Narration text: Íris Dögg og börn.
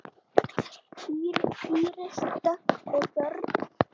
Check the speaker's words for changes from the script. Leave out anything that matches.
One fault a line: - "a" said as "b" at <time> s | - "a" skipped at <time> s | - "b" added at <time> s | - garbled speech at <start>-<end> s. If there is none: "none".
none